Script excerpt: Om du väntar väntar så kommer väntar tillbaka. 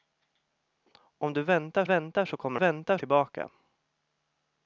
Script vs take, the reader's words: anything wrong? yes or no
no